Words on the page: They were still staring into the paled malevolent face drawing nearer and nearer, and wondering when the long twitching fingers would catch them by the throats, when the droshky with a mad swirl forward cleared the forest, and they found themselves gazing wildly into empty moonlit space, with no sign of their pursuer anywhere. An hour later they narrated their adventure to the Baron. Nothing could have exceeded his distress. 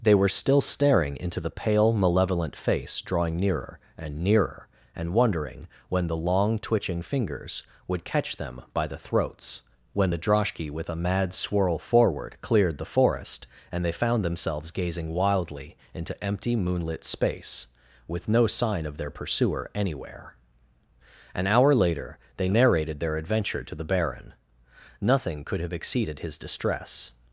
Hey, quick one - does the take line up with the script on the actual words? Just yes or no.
no